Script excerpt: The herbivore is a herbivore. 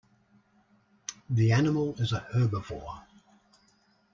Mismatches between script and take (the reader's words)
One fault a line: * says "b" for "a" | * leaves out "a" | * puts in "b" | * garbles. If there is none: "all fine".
* says "animal" for "herbivore"